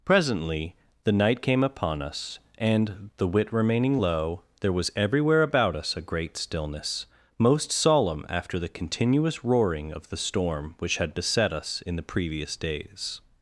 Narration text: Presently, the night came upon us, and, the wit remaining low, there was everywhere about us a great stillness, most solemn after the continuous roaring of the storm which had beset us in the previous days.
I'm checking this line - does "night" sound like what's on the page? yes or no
yes